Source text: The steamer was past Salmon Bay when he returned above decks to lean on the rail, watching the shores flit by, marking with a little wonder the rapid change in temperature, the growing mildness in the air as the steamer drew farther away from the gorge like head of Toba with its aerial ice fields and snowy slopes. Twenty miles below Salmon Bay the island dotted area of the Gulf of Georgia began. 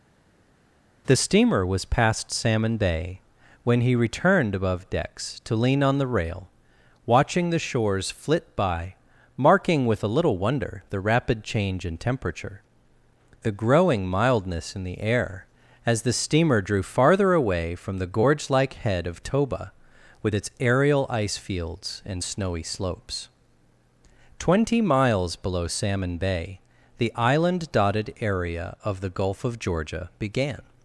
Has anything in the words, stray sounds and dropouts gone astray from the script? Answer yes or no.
no